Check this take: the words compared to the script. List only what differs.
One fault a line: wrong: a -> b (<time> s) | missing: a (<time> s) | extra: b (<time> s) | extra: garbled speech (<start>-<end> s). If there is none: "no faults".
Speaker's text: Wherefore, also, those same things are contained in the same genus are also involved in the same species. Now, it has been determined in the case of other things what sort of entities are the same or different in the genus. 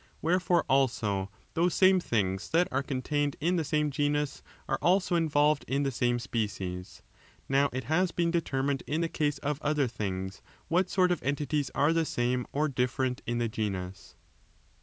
extra: that (2.5 s)